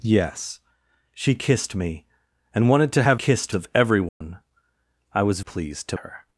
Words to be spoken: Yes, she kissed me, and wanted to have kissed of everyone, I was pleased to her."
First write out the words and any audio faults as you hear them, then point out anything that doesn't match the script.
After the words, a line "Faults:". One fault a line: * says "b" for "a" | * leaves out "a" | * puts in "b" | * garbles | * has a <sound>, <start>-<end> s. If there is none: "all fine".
Yes, she kissed me, and wanted to have kissed of everyone, I was pleased to her."
Faults:
* has a dropout, 4.1-4.2 s